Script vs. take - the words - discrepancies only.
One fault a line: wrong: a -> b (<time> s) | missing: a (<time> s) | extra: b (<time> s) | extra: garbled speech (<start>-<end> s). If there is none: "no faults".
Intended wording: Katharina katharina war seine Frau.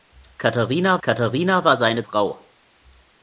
no faults